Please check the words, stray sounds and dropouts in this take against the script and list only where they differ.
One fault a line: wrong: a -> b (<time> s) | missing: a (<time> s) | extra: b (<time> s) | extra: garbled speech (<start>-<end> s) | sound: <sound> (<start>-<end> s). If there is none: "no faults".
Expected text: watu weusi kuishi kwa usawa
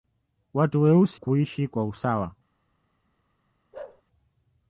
sound: bark (3.7-4.0 s)